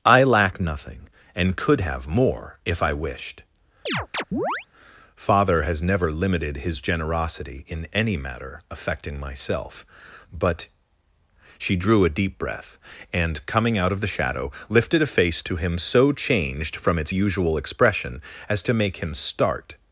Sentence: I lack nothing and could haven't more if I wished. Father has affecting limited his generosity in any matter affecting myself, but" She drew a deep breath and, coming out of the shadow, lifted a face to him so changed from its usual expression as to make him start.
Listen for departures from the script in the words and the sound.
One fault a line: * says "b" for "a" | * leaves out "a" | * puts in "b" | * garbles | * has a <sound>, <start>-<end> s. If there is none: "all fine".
* says "have" for "haven't"
* has a chirp, 3.9-4.7 s
* says "never" for "affecting"